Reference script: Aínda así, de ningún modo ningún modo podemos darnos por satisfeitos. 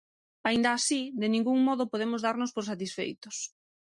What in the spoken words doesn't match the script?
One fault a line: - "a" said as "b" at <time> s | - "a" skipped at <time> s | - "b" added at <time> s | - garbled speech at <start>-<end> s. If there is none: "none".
- "ningún modo" skipped at 1.9 s